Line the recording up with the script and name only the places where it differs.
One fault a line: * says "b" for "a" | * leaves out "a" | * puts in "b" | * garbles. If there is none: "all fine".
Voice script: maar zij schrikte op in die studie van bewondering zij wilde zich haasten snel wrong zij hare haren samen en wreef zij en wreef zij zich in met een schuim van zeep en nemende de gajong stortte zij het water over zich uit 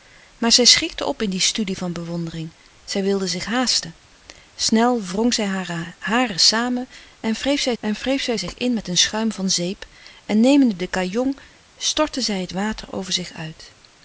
all fine